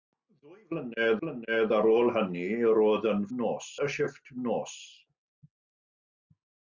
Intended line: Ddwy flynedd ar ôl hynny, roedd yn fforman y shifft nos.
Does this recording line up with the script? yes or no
no